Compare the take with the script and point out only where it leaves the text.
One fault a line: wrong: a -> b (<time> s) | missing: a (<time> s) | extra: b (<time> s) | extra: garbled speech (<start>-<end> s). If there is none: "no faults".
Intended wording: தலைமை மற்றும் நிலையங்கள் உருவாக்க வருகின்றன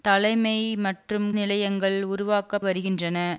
no faults